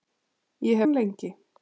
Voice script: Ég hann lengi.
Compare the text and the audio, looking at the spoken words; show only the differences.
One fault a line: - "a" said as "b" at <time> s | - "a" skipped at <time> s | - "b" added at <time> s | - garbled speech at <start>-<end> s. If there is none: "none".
none